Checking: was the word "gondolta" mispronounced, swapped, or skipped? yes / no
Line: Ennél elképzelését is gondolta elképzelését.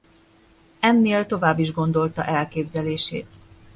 no